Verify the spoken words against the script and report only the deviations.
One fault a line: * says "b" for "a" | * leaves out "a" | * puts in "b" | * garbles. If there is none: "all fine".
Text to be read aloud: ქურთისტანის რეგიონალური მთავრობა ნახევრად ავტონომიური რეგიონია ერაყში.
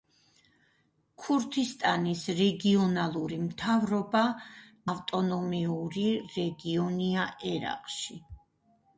* leaves out "ნახევრად"